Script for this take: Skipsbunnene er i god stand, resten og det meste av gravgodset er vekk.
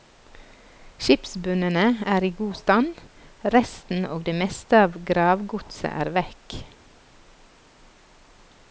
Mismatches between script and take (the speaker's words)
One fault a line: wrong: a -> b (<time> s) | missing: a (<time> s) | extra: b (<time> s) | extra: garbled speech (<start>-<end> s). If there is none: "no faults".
no faults